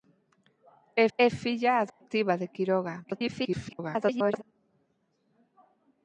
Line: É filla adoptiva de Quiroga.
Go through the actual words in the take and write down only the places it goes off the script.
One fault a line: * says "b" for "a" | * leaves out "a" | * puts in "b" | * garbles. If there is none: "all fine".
* puts in "é"
* garbles